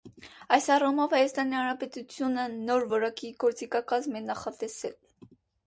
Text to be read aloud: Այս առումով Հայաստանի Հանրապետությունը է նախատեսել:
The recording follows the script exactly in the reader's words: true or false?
false